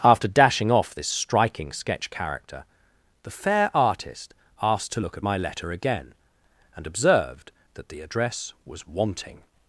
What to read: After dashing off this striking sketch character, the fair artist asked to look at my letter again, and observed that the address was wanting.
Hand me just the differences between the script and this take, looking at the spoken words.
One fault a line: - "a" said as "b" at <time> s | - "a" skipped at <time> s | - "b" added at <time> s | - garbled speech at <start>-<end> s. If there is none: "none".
none